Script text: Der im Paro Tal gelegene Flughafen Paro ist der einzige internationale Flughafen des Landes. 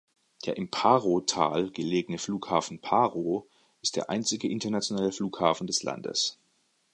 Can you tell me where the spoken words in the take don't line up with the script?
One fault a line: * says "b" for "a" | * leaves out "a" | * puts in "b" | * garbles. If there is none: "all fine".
all fine